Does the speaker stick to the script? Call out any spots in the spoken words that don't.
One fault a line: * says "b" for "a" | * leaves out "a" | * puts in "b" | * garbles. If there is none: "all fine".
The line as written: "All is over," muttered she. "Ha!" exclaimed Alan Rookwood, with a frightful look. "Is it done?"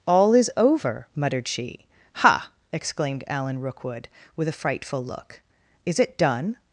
all fine